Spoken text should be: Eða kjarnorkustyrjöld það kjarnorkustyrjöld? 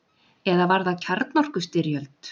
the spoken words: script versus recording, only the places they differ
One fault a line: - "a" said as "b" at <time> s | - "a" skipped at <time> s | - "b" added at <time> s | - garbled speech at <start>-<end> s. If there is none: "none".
- "kjarnorkustyrjöld" said as "var" at 0.7 s